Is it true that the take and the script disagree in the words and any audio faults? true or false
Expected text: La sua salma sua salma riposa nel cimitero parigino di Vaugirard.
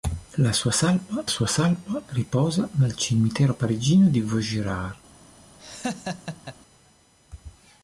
true